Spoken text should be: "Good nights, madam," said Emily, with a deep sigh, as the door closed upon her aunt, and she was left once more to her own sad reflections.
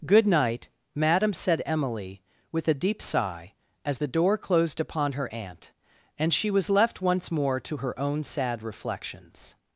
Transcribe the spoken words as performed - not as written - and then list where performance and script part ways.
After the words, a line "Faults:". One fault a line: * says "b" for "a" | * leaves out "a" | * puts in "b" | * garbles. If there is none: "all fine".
"Good night, madam," said Emily, with a deep sigh, as the door closed upon her aunt, and she was left once more to her own sad reflections.
Faults:
* says "night" for "nights"